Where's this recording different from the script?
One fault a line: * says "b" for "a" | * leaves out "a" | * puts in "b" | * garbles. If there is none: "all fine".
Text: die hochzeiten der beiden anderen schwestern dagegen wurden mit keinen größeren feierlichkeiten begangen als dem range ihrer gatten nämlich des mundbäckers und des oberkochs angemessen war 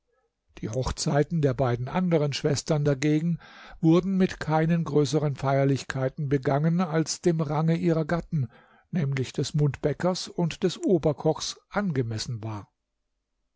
all fine